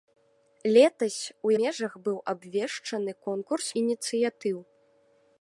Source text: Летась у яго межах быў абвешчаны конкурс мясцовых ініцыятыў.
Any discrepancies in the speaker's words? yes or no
yes